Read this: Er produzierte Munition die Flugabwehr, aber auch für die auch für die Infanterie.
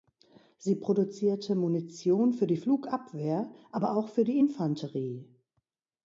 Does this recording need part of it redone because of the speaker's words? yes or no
yes